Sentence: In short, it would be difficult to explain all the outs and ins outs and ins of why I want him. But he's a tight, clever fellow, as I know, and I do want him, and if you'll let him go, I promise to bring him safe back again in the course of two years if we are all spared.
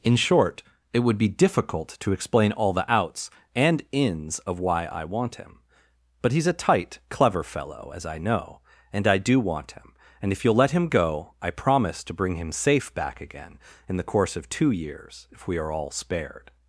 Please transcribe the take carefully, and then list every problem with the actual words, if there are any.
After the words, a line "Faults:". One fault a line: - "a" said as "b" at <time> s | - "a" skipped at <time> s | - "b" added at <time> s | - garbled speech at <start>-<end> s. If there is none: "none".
In short, it would be difficult to explain all the outs and ins of why I want him. But he's a tight, clever fellow, as I know, and I do want him, and if you'll let him go, I promise to bring him safe back again in the course of two years if we are all spared.
Faults:
- "outs and ins" skipped at 4.4 s